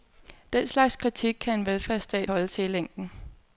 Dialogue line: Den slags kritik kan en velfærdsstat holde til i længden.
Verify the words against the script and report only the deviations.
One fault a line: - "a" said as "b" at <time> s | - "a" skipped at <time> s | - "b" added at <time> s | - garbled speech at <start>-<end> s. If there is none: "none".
none